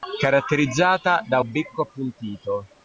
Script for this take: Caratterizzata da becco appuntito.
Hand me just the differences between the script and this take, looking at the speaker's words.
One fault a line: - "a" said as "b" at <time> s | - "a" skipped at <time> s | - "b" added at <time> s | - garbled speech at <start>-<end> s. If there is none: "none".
none